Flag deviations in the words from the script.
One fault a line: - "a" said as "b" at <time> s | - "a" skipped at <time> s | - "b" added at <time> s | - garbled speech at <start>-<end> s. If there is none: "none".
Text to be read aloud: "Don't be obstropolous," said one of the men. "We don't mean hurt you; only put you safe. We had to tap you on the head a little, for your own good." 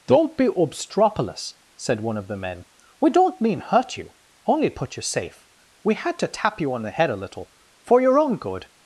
none